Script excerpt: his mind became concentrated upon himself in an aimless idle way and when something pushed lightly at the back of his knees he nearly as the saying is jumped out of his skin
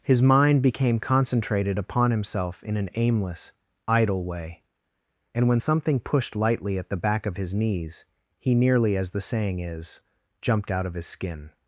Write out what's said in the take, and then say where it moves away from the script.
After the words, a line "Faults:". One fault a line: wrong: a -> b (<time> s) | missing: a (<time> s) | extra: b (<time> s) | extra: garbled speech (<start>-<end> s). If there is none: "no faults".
his mind became concentrated upon himself in an aimless idle way and when something pushed lightly at the back of his knees he nearly as the saying is jumped out of his skin
Faults:
no faults